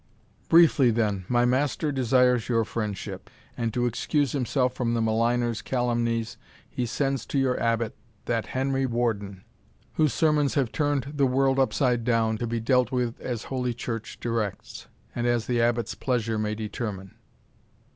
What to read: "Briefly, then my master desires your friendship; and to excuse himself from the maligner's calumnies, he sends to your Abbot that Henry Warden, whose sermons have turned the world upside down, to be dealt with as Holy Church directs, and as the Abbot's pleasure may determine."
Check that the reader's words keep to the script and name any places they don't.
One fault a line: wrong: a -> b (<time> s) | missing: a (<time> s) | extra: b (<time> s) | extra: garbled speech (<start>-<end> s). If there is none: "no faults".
no faults